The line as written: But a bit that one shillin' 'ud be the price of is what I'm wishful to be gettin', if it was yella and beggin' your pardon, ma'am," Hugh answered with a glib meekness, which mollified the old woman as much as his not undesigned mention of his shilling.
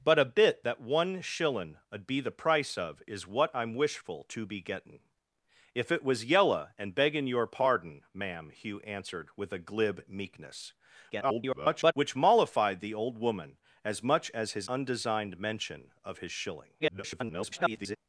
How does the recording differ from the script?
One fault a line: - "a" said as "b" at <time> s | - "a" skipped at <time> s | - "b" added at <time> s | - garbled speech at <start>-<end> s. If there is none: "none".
- garbled speech at 11.1-11.9 s
- "not" skipped at 14.7 s
- garbled speech at 16.8-18.0 s